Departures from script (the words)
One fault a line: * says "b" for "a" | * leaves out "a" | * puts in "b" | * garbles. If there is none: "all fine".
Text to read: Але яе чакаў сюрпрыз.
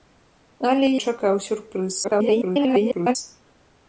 * leaves out "яе"
* garbles